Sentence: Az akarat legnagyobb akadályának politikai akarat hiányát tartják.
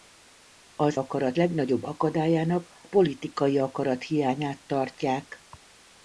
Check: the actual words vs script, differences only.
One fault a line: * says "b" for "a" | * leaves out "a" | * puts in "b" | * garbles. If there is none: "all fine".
all fine